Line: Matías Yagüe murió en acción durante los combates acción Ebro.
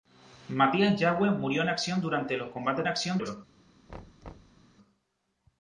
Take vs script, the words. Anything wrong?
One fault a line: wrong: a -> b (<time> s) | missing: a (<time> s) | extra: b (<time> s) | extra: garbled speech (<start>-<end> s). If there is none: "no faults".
no faults